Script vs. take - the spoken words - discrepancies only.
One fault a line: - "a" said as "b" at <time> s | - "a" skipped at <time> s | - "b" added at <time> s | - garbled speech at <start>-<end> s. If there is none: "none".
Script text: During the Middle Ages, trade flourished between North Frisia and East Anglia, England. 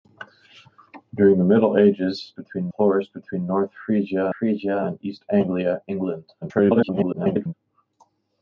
- "trade" said as "between" at 2.4 s
- "Frisia" added at 4.4 s
- garbled speech at 6.4-7.5 s